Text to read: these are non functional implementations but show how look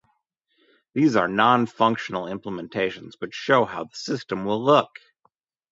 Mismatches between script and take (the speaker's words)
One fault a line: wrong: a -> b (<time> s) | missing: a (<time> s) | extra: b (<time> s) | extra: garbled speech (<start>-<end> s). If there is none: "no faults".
extra: the system will (3.8 s)